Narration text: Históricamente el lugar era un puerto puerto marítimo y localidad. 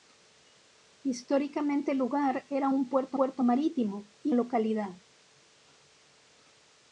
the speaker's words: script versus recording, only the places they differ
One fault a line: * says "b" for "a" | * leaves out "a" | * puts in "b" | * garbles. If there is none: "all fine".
all fine